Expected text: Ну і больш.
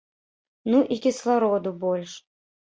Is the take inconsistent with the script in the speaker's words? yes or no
yes